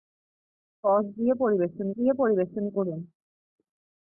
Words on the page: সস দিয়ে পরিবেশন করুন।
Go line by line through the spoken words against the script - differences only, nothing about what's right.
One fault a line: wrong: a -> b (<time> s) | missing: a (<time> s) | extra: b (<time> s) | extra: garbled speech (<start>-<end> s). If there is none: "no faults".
extra: দিয়ে পরিবেশন (1.9 s)